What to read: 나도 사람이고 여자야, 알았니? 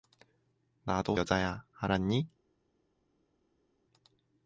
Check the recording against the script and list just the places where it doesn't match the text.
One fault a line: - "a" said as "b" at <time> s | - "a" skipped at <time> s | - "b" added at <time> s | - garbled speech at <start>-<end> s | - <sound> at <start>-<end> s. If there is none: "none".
- "사람이고" skipped at 1.1 s